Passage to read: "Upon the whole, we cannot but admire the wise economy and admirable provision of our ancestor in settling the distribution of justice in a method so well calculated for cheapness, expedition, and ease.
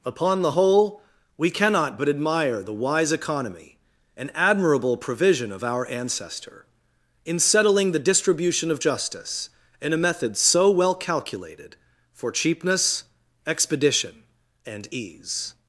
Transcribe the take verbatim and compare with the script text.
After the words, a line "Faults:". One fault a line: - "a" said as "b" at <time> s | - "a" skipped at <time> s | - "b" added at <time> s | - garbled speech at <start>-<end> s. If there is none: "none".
"Upon the whole, we cannot but admire the wise economy and admirable provision of our ancestor in settling the distribution of justice in a method so well calculated for cheapness, expedition, and ease.
Faults:
none